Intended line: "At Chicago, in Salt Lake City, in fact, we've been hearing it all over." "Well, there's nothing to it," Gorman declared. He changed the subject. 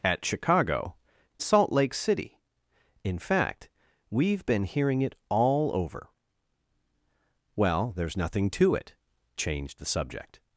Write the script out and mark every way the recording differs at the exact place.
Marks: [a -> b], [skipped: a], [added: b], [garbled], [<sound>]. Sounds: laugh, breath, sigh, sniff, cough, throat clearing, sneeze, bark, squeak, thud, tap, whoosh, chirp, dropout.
"At Chicago, [skipped: in] Salt Lake City, in fact, we've been hearing it all over." "Well, there's nothing to it," [skipped: Gorman declared. He] changed the subject.